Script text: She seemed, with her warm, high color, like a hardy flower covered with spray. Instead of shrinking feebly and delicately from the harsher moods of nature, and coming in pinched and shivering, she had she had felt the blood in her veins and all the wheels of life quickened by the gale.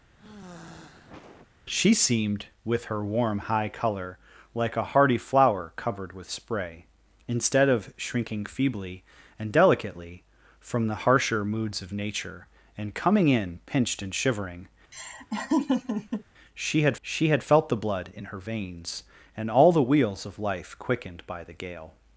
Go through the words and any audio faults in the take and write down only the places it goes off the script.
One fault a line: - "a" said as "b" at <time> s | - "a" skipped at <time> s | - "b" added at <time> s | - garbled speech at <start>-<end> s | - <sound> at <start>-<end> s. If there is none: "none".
- sigh at 0.2-1.5 s
- laugh at 14.9-16.2 s